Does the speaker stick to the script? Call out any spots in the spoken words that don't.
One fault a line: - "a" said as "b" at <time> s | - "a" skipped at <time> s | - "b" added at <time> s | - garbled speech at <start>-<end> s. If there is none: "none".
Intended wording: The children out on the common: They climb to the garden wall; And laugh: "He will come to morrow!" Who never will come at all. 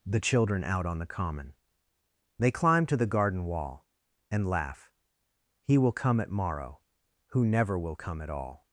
- "to" said as "at" at 6.2 s